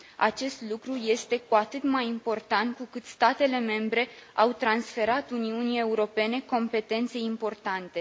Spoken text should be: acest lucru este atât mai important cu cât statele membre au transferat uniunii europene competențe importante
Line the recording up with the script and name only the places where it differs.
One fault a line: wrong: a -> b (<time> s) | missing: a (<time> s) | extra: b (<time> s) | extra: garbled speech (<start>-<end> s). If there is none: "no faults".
extra: cu (1.4 s)